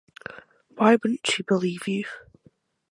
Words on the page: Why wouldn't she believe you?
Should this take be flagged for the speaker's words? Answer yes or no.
no